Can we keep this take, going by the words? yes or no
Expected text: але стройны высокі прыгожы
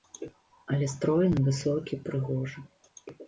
yes